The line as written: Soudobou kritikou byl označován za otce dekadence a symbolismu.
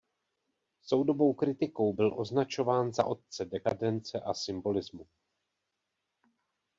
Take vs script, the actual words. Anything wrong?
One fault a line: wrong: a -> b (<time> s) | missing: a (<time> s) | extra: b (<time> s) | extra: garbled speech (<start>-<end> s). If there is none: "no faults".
no faults